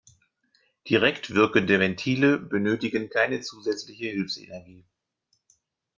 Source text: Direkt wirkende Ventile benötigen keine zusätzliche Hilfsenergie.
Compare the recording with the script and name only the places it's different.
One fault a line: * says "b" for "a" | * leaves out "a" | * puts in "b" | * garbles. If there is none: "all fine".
all fine